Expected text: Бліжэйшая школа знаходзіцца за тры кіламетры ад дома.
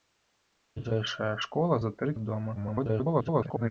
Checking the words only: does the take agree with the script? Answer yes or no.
no